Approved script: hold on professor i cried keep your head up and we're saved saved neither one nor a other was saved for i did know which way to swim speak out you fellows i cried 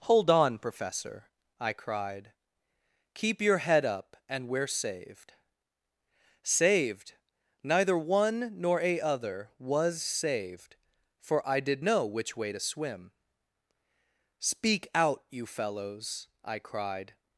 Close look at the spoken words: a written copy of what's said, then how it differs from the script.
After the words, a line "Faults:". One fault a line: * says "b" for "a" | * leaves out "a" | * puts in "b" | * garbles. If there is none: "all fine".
hold on professor i cried keep your head up and we're saved saved neither one nor a other was saved for i did know which way to swim speak out you fellows i cried
Faults:
all fine